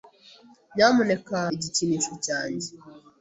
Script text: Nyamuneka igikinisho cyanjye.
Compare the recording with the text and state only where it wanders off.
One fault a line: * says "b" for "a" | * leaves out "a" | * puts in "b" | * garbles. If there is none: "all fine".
all fine